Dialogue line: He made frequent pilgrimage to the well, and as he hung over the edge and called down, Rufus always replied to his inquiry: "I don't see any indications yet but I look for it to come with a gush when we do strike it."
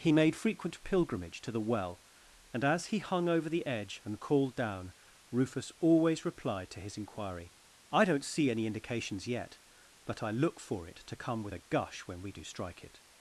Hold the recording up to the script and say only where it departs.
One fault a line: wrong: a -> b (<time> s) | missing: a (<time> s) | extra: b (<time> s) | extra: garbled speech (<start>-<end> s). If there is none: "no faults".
no faults